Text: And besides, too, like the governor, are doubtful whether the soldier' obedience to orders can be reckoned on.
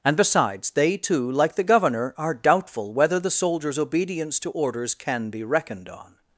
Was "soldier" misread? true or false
true